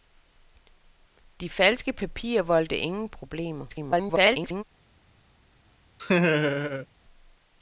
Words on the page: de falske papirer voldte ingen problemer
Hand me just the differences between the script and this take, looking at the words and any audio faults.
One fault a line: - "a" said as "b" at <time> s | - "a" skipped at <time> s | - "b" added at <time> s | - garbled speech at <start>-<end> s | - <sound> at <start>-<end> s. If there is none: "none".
- garbled speech at 3.7-4.6 s
- laugh at 6.0-6.9 s